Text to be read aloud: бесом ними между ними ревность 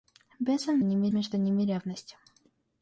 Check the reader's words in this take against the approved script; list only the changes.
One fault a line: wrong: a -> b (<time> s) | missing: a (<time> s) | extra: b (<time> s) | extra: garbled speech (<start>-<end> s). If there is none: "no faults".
no faults